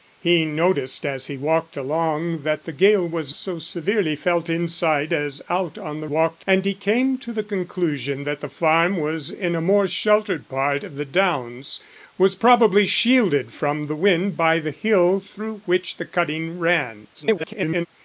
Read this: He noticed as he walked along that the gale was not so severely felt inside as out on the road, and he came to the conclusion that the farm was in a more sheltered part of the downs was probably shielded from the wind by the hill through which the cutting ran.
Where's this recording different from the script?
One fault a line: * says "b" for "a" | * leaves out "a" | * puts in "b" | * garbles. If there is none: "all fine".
* leaves out "not"
* says "walked" for "road"
* garbles